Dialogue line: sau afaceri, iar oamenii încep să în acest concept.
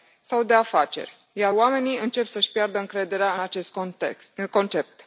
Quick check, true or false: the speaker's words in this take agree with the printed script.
false